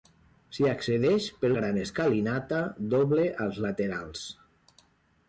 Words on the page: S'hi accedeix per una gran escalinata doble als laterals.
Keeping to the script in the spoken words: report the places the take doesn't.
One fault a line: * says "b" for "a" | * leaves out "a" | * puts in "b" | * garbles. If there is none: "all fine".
* leaves out "una"